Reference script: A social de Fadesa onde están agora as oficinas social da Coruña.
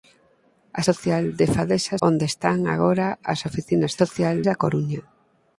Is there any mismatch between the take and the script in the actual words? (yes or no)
no